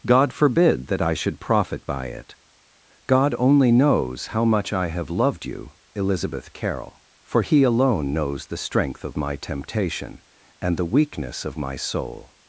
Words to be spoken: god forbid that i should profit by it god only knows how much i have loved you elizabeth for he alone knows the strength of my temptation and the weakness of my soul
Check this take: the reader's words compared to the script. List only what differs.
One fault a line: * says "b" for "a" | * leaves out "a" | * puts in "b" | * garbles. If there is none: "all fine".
* puts in "carroll"